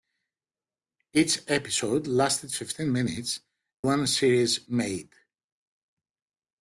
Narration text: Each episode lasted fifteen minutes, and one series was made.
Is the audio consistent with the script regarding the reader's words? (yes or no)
no